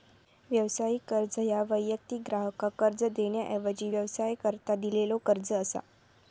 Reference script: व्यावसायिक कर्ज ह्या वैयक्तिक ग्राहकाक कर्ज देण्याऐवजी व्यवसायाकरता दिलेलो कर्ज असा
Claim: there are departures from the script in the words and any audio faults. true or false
false